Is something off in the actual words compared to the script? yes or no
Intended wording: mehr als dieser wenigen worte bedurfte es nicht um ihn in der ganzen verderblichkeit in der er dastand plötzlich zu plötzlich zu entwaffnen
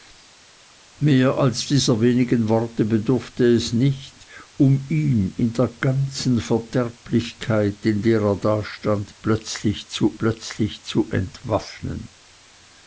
no